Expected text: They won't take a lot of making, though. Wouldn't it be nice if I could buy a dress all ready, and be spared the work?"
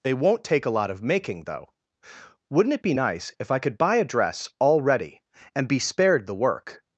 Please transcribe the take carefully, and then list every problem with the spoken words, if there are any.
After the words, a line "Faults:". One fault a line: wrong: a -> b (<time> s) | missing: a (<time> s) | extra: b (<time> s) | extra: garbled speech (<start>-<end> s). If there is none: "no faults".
They won't take a lot of making, though. Wouldn't it be nice if I could buy a dress all ready, and be spared the work?"
Faults:
no faults